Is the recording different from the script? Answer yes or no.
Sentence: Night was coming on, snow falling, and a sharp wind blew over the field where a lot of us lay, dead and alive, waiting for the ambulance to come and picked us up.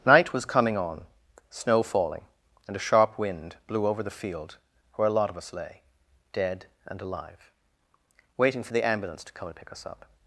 yes